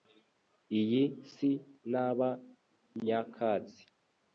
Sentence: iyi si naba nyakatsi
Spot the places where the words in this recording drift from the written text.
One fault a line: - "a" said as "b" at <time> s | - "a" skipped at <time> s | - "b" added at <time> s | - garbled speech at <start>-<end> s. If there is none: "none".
none